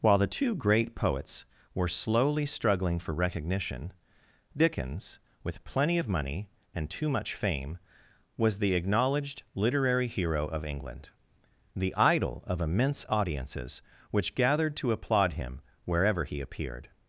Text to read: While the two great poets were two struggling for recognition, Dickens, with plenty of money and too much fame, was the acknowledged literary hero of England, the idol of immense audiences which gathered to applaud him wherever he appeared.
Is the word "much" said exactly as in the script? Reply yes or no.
yes